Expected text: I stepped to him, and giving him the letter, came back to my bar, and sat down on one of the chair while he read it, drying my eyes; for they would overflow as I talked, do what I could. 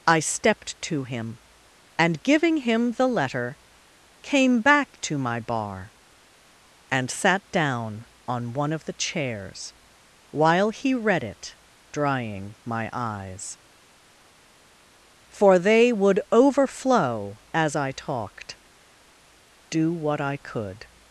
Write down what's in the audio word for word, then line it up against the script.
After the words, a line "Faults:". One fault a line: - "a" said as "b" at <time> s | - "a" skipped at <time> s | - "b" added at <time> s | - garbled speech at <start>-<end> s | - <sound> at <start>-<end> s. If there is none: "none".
I stepped to him, and giving him the letter, came back to my bar, and sat down on one of the chairs while he read it, drying my eyes; for they would overflow as I talked, do what I could.
Faults:
- "chair" said as "chairs" at 8.9 s